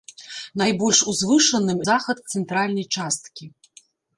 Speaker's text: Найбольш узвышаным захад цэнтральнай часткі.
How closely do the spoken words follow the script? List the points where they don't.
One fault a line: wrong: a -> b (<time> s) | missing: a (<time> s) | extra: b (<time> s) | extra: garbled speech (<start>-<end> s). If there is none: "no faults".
no faults